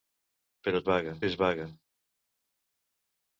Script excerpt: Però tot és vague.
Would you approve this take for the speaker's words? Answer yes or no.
no